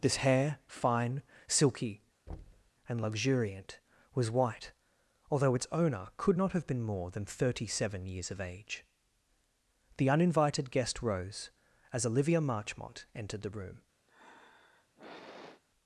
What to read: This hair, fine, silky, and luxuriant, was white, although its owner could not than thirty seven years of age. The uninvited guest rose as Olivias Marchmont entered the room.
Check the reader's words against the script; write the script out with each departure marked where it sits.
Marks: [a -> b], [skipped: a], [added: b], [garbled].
This hair, fine, silky, and luxuriant, was white, although its owner could not [added: have been more] than thirty seven years of age. The uninvited guest rose as [Olivias -> Olivia] Marchmont entered the room.